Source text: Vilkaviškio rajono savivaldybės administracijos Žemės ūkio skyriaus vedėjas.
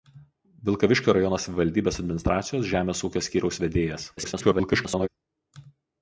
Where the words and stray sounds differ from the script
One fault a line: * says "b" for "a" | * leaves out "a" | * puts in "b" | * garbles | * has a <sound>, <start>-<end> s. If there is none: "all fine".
* garbles